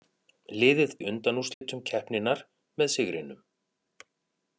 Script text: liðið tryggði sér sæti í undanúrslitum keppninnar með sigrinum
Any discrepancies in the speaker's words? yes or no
yes